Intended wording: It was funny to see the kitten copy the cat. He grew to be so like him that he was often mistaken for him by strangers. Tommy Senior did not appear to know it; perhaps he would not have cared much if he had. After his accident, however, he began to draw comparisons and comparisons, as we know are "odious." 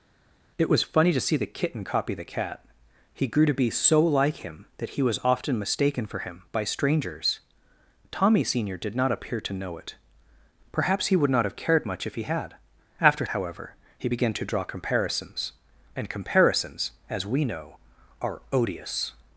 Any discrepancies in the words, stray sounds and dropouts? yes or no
yes